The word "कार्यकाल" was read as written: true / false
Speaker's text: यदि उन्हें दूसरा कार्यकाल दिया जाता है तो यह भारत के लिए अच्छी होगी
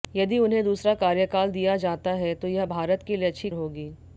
true